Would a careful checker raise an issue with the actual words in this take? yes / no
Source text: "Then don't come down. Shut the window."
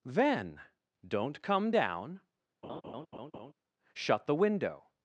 no